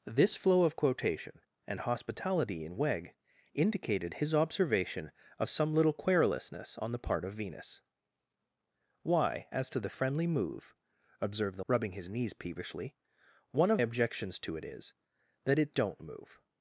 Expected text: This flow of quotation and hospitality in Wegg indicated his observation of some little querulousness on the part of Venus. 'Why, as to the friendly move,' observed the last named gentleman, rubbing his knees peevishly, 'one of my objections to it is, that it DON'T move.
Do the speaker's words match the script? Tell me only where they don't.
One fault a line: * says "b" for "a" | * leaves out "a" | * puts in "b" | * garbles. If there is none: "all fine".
* leaves out "last named gentleman"
* leaves out "my"